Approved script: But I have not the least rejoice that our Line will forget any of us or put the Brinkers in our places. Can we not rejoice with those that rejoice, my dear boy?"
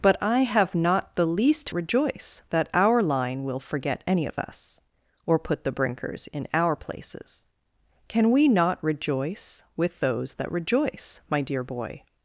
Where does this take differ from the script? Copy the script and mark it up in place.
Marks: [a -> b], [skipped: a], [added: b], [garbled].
But I have not the least rejoice that our Line will forget any of us or put the Brinkers in our places. Can we not rejoice with those that rejoice, my dear boy?"